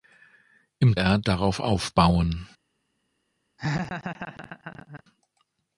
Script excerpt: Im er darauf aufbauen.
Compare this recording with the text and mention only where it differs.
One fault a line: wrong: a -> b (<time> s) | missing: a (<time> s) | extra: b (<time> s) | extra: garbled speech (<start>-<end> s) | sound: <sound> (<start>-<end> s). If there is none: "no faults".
sound: laugh (3.6-5.0 s)